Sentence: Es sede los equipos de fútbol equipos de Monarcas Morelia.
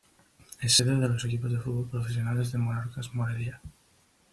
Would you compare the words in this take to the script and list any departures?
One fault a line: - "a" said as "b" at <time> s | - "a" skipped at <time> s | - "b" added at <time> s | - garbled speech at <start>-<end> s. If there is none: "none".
- "de" added at 1.0 s
- "equipos" said as "profesionales" at 1.9 s